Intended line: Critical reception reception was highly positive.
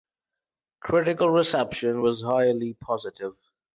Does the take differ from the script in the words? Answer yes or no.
yes